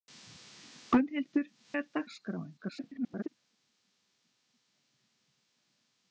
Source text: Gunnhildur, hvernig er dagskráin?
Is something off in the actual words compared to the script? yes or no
yes